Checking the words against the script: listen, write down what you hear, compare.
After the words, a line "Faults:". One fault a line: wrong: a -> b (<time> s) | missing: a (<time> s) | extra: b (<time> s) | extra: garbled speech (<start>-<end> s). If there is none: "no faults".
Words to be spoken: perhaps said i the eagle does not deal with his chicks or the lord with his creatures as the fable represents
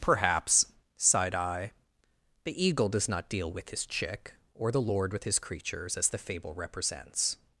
perhaps sighed i the eagle does not deal with his chick or the lord with his creatures as the fable represents
Faults:
wrong: said -> sighed (1.0 s)
wrong: chicks -> chick (3.9 s)